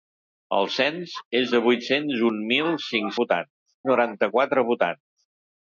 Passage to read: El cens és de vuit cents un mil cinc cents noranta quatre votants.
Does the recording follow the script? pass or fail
fail